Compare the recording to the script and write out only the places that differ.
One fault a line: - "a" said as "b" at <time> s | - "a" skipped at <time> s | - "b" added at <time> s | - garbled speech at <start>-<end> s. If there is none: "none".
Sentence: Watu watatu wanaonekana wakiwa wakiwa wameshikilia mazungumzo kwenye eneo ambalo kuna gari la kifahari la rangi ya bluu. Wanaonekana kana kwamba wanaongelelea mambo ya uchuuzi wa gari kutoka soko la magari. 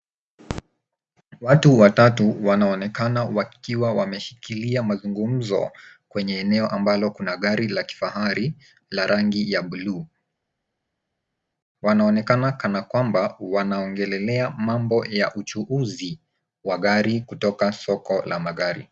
- "wakiwa" skipped at 3.9 s